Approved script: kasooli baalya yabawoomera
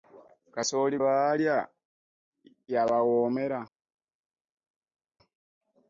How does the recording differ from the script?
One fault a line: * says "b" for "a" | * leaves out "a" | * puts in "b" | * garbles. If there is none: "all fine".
all fine